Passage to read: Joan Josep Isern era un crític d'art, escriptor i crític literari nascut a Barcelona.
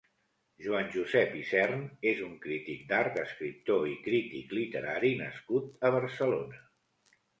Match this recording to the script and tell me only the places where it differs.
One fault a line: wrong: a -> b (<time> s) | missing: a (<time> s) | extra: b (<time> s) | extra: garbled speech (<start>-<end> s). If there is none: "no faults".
wrong: era -> és (2.1 s)